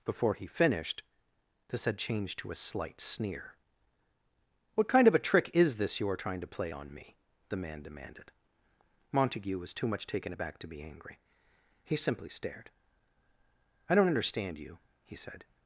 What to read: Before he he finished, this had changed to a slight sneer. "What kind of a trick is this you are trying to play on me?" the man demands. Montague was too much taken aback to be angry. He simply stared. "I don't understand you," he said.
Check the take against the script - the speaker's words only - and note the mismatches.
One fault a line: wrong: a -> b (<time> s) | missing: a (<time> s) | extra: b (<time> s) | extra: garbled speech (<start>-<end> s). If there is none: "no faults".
missing: he (0.5 s)
wrong: demands -> demanded (7.8 s)